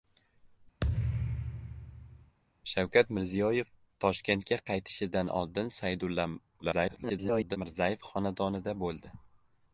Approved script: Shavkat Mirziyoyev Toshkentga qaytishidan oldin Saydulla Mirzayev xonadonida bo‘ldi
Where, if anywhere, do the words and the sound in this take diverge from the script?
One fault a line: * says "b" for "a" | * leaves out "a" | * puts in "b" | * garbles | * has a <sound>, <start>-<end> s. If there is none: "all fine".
* has a thud, 0.8-2.4 s
* garbles